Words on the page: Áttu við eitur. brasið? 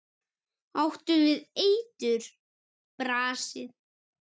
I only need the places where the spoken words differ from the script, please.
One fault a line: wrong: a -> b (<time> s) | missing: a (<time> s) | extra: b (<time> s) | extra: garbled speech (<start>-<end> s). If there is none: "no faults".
no faults